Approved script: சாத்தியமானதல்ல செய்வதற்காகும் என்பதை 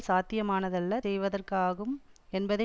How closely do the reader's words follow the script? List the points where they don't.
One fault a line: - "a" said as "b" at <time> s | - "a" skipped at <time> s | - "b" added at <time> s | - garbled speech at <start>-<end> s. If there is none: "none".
none